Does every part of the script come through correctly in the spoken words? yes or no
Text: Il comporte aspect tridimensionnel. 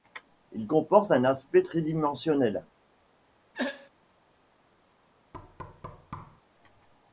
no